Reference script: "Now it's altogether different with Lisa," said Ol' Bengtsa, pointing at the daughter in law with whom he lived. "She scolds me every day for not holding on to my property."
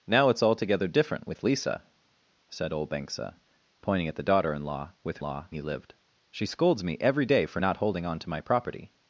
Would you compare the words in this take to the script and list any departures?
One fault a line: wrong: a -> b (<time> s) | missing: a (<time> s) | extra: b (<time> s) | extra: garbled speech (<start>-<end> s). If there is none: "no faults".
wrong: whom -> law (5.2 s)